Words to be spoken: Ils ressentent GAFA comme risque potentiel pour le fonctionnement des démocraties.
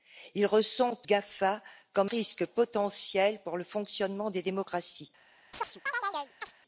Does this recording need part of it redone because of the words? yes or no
no